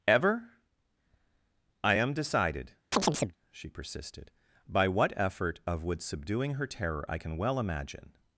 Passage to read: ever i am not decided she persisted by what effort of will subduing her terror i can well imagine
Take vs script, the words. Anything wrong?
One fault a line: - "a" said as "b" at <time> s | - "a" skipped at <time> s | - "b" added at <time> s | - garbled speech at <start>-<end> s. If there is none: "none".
- "not" skipped at 2.1 s
- "will" said as "would" at 5.8 s